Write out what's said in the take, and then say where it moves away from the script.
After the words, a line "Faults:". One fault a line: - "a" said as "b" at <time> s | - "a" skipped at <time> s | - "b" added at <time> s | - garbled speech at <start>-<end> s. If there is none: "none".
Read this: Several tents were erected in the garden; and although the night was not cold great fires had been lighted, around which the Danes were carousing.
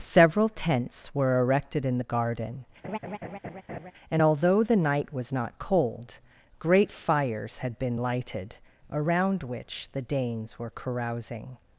Several tents were erected in the garden; and although the night was not cold great fires had been lighted, around which the Danes were carousing.
Faults:
none